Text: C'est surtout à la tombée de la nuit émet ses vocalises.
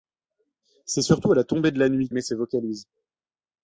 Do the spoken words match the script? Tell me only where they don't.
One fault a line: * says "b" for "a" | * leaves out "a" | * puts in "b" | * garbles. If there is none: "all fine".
all fine